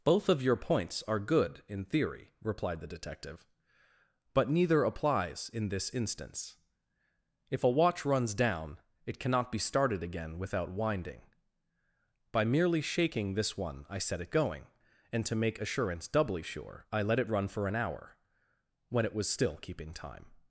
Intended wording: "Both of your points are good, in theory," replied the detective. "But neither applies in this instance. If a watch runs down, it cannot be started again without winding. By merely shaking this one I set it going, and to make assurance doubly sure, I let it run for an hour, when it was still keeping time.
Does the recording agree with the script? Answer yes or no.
yes